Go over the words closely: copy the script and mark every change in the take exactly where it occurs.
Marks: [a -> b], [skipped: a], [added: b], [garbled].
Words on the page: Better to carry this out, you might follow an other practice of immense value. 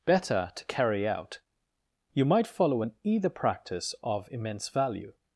Better to carry [skipped: this] out, you might follow an [other -> either] practice of immense value.